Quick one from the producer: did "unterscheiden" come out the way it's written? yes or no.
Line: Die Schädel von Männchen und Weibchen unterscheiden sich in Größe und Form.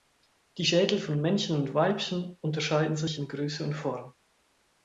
yes